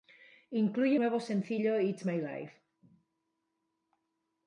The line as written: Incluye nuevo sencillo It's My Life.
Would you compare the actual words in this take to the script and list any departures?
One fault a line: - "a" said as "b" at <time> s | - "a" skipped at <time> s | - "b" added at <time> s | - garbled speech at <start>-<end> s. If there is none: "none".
none